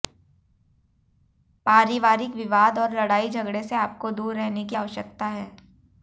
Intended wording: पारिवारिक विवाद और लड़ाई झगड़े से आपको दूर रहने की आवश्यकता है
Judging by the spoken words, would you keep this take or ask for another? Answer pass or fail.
pass